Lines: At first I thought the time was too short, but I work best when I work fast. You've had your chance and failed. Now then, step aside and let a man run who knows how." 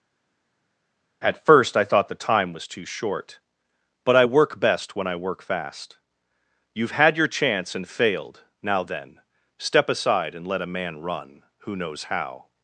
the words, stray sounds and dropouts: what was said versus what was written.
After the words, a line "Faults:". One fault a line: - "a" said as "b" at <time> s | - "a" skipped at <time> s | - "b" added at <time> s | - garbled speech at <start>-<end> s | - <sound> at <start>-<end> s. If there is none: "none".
At first I thought the time was too short, but I work best when I work fast. You've had your chance and failed. Now then, step aside and let a man run who knows how."
Faults:
none